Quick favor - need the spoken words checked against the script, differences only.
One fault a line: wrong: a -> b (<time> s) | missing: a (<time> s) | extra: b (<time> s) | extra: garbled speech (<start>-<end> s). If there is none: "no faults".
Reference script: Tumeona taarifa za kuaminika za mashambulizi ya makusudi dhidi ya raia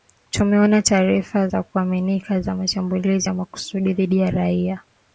no faults